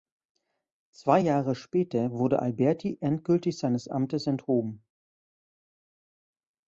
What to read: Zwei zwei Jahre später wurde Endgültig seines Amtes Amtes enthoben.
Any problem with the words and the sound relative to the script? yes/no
yes